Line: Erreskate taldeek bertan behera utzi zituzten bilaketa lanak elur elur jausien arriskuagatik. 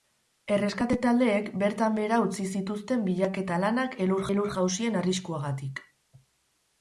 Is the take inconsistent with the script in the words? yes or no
no